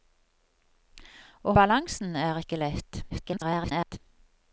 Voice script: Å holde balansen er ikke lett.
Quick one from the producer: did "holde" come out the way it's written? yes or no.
no